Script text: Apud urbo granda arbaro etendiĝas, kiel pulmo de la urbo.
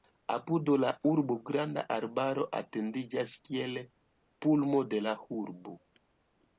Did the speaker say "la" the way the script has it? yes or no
yes